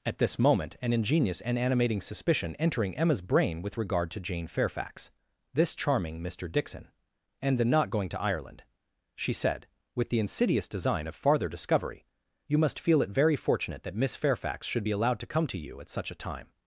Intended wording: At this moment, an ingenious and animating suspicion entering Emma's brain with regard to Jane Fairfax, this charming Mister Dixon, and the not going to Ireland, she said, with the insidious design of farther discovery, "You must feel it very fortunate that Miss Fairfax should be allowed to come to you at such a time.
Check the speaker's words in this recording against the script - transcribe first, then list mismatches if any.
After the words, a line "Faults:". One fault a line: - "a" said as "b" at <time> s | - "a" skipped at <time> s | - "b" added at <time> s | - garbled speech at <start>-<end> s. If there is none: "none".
At this moment, an ingenious and animating suspicion entering Emma's brain with regard to Jane Fairfax, this charming Mister Dixon, and the not going to Ireland, she said, with the insidious design of farther discovery, "You must feel it very fortunate that Miss Fairfax should be allowed to come to you at such a time.
Faults:
none